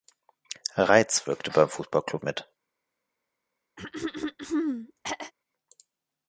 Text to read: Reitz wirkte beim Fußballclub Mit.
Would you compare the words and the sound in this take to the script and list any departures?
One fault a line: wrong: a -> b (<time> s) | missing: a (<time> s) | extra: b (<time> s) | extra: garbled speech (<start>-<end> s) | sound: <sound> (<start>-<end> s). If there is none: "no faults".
sound: throat clearing (3.8-5.3 s)